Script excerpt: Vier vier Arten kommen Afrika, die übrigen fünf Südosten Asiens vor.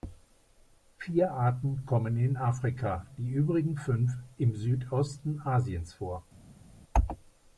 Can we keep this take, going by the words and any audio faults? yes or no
no